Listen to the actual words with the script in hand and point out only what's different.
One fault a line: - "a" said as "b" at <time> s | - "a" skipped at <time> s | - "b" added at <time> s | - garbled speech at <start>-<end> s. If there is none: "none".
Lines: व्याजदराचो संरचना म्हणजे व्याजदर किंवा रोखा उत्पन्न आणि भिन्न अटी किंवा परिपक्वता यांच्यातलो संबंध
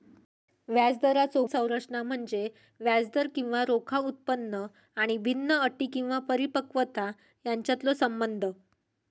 none